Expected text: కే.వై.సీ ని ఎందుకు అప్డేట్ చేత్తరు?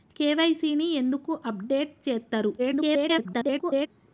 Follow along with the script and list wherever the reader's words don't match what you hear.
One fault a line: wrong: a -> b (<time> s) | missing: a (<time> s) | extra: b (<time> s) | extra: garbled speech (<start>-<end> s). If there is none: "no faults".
extra: garbled speech (2.6-3.9 s)